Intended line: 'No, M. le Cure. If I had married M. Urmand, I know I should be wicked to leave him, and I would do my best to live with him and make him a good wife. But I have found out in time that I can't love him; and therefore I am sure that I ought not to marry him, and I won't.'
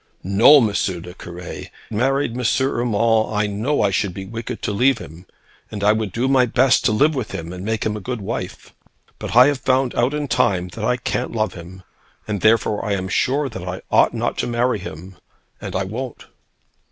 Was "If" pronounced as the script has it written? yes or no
no